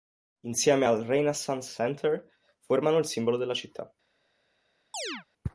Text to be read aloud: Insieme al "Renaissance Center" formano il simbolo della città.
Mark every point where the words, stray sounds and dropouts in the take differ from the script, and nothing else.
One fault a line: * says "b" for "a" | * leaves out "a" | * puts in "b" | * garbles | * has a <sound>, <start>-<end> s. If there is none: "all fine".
* has a chirp, 4.9-5.3 s